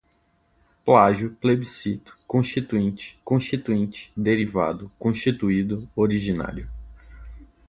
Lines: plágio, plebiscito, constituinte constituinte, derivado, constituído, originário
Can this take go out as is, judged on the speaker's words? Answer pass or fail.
pass